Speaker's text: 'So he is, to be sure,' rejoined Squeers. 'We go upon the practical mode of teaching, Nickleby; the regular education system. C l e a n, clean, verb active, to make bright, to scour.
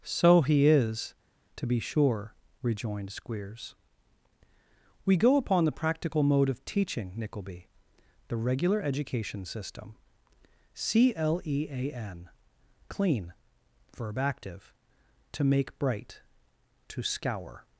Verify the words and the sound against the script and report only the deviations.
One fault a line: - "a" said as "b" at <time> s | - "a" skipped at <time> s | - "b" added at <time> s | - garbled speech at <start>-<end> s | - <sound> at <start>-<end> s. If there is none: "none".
none